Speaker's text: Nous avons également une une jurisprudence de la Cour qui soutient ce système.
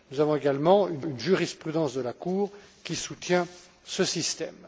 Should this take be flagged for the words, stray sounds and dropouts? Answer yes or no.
no